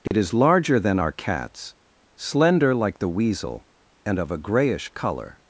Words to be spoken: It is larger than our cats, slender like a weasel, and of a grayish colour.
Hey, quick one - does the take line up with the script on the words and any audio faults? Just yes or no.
no